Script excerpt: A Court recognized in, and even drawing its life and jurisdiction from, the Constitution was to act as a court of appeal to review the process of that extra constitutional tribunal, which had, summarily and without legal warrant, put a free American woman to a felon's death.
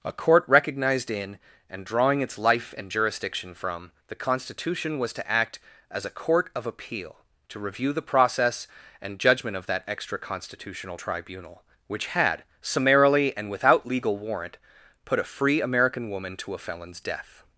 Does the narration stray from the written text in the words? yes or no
yes